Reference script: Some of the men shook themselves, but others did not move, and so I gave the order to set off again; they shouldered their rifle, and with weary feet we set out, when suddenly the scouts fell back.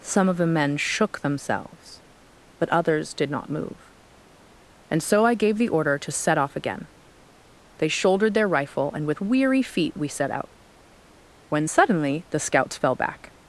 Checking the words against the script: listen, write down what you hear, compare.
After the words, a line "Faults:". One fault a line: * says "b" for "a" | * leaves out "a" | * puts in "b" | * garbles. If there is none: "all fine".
Some of the men shook themselves, but others did not move, and so I gave the order to set off again; they shouldered their rifle, and with weary feet we set out, when suddenly the scouts fell back.
Faults:
all fine